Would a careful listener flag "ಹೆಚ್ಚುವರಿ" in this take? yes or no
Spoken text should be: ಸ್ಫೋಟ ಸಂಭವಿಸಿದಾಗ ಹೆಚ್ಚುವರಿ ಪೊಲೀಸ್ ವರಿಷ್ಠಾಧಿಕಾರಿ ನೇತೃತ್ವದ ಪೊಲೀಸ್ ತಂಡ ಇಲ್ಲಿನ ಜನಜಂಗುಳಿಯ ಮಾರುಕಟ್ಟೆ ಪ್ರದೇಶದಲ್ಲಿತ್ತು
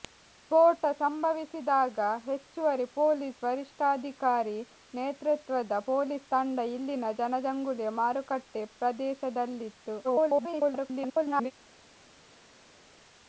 no